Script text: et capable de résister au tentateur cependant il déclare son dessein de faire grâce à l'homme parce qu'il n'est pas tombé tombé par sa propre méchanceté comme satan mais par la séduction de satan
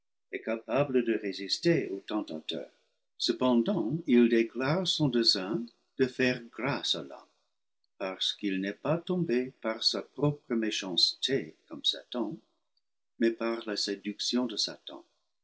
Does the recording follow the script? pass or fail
fail